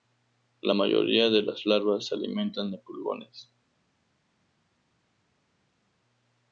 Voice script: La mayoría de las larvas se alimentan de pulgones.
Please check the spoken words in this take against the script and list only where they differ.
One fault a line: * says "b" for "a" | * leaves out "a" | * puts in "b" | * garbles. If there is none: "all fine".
all fine